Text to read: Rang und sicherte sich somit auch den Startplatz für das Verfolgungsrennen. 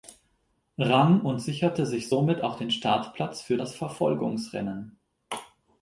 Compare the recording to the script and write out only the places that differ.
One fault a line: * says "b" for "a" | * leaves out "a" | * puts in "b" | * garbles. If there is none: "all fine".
all fine